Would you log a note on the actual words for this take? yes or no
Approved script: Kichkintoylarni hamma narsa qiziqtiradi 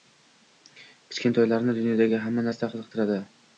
yes